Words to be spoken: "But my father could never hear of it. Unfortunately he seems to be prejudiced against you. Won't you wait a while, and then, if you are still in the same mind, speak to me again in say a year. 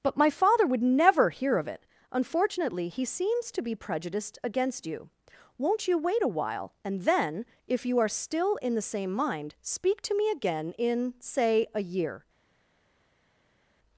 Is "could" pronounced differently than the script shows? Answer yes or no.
yes